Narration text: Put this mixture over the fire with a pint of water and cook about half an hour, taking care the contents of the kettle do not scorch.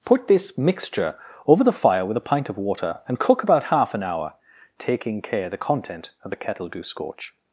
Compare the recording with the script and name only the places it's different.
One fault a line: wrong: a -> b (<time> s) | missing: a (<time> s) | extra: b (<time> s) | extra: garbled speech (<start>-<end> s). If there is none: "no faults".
wrong: contents -> content (5.6 s)
missing: not (6.8 s)